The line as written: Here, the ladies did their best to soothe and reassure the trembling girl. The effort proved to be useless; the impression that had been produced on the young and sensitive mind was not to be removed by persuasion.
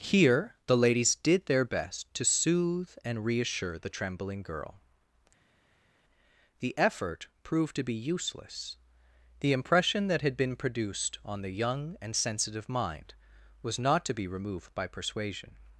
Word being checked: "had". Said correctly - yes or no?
yes